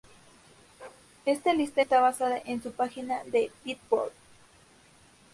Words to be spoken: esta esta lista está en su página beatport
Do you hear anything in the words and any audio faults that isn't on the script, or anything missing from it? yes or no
yes